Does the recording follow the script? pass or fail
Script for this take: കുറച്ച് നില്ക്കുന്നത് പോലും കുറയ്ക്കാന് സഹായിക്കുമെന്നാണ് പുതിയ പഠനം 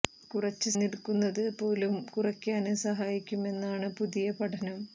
pass